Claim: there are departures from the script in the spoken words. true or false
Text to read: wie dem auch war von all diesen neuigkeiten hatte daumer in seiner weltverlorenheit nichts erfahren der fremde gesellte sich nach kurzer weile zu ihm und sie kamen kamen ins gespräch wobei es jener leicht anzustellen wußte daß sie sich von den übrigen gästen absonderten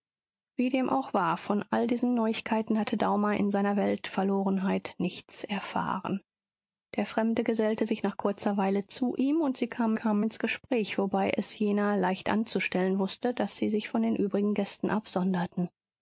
false